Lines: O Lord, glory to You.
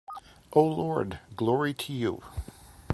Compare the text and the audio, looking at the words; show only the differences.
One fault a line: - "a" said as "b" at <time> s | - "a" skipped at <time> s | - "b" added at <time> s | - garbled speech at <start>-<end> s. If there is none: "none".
none